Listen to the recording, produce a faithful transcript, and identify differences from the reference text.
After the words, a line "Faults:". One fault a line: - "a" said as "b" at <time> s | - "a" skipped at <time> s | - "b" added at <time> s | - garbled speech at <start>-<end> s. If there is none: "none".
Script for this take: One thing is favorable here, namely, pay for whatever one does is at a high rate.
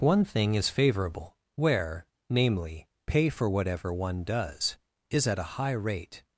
One thing is favorable where, namely, pay for whatever one does is at a high rate.
Faults:
- "here" said as "where" at 1.6 s